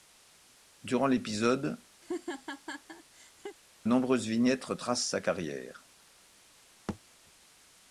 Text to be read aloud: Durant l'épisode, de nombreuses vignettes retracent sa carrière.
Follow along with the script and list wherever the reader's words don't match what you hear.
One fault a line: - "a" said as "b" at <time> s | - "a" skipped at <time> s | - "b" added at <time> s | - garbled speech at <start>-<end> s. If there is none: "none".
- "de" skipped at 1.8 s